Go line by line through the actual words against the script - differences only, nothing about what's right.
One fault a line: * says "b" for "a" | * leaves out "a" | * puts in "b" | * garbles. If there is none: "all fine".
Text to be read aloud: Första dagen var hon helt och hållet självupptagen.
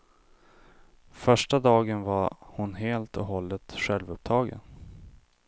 all fine